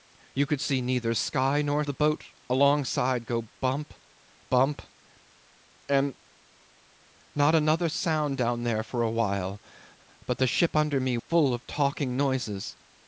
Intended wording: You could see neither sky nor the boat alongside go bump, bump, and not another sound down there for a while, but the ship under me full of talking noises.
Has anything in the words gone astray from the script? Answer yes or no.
no